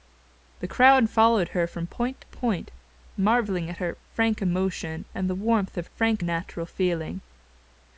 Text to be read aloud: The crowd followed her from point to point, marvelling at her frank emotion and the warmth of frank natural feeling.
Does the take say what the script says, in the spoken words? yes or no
yes